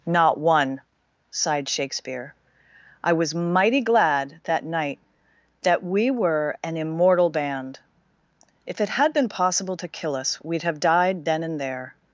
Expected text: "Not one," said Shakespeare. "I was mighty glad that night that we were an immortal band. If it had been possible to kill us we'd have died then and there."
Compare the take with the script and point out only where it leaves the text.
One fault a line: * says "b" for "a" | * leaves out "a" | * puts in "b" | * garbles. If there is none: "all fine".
* says "sighed" for "said"